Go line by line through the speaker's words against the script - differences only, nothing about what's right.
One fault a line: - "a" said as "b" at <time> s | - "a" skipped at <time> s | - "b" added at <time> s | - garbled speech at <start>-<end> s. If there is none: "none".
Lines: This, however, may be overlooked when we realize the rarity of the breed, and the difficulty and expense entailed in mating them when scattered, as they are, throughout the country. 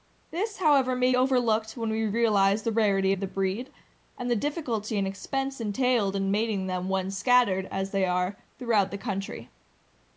- "be" skipped at 1.1 s